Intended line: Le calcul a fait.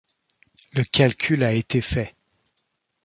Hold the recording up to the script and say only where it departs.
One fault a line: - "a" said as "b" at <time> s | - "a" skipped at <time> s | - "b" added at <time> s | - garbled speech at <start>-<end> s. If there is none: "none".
- "été" added at 1.5 s